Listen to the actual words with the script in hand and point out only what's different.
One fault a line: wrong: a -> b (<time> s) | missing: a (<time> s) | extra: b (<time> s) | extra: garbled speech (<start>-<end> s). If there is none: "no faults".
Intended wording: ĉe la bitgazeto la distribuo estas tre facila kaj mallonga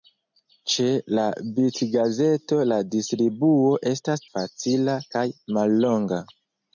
missing: tre (4.3 s)